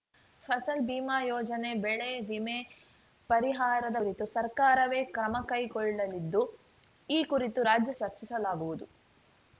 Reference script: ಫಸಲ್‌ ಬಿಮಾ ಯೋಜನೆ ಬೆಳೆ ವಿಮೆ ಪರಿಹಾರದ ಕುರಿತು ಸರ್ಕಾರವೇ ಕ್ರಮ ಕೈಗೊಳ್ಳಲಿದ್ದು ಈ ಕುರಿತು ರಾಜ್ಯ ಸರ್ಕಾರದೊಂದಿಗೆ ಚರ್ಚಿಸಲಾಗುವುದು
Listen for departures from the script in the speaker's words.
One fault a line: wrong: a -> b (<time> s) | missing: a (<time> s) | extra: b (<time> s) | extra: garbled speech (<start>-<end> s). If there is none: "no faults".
missing: ಸರ್ಕಾರದೊಂದಿಗೆ (7.9 s)